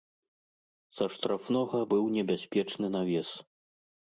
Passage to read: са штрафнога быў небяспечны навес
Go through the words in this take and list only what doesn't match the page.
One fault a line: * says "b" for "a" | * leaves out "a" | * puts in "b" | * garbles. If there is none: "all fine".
all fine